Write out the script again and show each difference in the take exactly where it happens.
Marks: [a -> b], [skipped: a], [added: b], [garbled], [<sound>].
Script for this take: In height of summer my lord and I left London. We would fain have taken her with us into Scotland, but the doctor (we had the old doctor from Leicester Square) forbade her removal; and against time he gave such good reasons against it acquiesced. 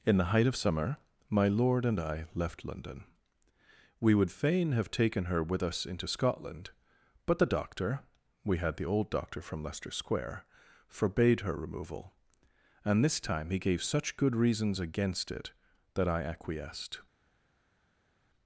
In [added: the] height of summer my lord and I left London. We would fain have taken her with us into Scotland, but the doctor (we had the old doctor from Leicester Square) forbade her removal; and [against -> this] time he gave such good reasons against it [added: that I] acquiesced.